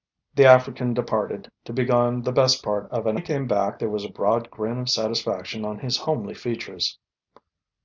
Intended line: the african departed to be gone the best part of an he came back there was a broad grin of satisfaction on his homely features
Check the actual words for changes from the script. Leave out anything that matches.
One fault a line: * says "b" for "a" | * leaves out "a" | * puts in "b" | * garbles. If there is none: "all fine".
all fine